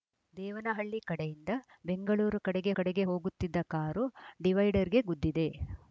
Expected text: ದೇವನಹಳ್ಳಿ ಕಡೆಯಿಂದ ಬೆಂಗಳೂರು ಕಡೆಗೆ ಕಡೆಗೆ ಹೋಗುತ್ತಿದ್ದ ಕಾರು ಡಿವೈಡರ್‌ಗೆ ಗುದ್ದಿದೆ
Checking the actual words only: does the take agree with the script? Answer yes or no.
yes